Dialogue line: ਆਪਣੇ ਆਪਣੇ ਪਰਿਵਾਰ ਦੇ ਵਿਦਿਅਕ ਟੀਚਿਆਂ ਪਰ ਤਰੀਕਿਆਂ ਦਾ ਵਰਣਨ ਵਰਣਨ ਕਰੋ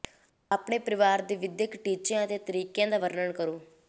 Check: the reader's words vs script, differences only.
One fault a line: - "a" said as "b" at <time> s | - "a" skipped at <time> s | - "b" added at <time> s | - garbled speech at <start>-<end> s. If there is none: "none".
- "ਆਪਣੇ" skipped at 0.8 s
- "ਪਰ" said as "ਅਤੇ" at 2.2 s
- "ਵਰਣਨ" skipped at 3.3 s